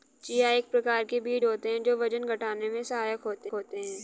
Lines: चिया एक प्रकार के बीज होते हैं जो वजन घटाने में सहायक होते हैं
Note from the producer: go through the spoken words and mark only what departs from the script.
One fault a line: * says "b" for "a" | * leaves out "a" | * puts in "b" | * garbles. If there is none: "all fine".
* puts in "होते"